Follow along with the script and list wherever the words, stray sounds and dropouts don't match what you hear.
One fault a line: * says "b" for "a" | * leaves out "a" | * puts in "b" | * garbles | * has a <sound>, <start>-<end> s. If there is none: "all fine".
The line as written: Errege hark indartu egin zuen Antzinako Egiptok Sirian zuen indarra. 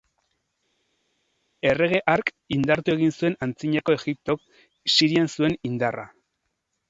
all fine